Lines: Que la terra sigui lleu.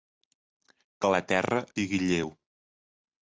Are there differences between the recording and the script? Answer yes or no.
no